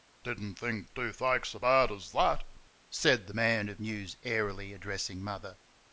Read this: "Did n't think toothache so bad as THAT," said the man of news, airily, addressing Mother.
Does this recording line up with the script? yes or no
yes